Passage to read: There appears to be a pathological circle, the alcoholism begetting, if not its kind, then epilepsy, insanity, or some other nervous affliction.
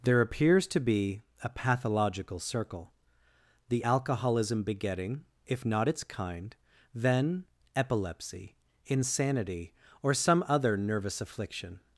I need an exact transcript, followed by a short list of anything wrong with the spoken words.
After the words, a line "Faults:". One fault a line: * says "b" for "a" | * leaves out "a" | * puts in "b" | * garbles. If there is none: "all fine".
There appears to be a pathological circle, the alcoholism begetting, if not its kind, then epilepsy, insanity, or some other nervous affliction.
Faults:
all fine